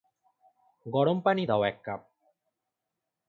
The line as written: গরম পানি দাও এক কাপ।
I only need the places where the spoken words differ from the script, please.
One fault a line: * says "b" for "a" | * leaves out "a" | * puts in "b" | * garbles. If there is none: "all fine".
all fine